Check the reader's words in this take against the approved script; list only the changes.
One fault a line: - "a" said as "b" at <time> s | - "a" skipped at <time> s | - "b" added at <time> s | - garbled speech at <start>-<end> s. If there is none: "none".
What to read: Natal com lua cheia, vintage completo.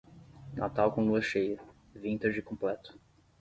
none